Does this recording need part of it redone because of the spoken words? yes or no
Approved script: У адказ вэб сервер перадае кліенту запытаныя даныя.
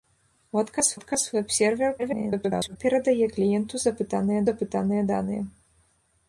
yes